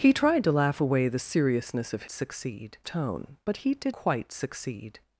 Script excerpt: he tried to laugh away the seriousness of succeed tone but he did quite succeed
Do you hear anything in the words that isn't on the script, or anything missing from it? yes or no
no